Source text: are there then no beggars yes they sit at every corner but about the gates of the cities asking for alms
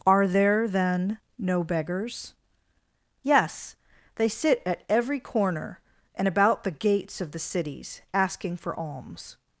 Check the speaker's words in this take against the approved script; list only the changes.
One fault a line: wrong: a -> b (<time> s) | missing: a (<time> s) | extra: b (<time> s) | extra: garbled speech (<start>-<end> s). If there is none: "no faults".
wrong: but -> and (6.2 s)